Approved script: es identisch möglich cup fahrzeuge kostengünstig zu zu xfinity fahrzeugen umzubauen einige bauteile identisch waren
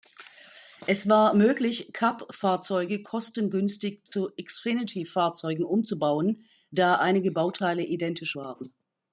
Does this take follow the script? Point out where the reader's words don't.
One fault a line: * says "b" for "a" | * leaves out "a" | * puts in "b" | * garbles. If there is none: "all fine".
* says "war" for "identisch"
* leaves out "zu"
* puts in "da"